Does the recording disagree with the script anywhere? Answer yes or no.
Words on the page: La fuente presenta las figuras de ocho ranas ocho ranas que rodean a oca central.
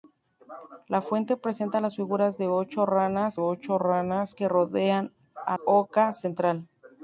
no